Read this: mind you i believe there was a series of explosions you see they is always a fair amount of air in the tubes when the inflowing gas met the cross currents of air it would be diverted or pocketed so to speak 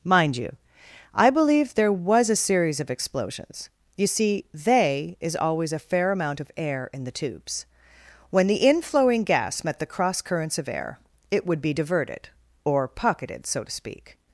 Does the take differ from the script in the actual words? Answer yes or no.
no